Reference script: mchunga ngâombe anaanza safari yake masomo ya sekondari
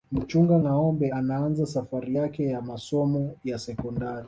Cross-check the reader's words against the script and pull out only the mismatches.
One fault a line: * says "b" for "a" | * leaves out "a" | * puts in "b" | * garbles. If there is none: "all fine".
* puts in "ya"